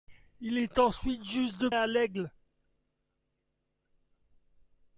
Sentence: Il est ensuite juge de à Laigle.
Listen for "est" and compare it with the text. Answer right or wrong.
right